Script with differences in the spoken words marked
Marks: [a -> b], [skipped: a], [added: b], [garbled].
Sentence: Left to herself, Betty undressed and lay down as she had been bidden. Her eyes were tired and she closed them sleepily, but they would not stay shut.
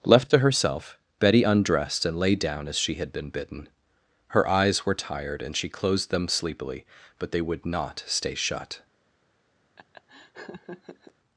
Left to herself, Betty undressed and lay down as she had been bidden. Her eyes were tired and she closed them sleepily, but they would not stay shut.